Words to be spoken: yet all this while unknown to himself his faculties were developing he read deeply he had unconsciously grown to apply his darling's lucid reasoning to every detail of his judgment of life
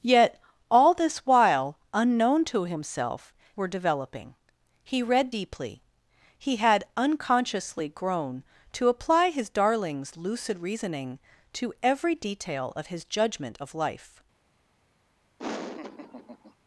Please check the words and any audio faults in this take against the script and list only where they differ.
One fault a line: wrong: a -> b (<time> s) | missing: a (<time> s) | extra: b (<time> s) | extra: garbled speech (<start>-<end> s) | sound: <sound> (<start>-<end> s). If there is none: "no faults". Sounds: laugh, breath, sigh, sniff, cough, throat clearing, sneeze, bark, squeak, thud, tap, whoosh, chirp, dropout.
missing: his faculties (3.3 s)
sound: laugh (15.4-16.5 s)